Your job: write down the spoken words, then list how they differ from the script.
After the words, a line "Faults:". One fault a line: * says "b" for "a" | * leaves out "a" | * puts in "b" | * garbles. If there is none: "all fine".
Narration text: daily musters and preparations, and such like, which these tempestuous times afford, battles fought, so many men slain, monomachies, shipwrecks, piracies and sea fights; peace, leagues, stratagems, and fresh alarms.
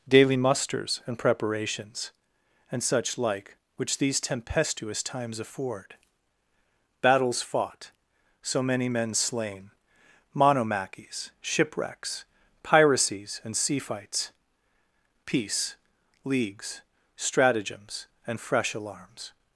daily musters and preparations, and such like, which these tempestuous times afford, battles fought, so many men slain, monomachies, shipwrecks, piracies and sea fights; peace, leagues, stratagems, and fresh alarms.
Faults:
all fine